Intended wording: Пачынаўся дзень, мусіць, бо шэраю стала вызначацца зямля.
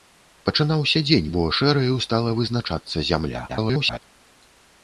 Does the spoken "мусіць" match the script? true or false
false